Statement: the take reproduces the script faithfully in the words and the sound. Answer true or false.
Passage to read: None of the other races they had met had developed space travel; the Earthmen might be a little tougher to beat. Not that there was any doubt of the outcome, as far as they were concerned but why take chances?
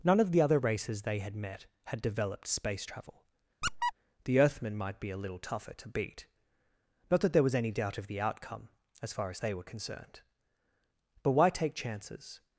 false